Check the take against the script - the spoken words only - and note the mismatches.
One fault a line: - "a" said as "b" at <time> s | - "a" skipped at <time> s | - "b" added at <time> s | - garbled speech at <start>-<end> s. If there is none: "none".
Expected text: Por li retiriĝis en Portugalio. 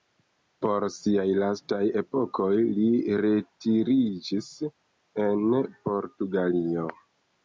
- "siaj lastaj epokoj" added at 0.9 s